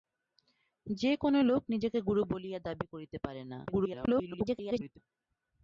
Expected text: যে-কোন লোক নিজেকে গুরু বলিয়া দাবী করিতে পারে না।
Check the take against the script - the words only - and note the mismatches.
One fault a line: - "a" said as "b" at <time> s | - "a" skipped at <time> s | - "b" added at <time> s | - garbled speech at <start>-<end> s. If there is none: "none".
- garbled speech at 3.7-5.0 s